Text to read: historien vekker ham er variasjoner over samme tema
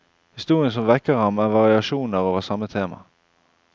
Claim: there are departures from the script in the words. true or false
true